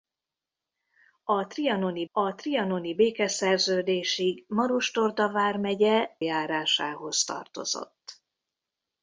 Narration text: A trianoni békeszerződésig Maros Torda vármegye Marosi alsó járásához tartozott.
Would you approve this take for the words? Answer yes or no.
no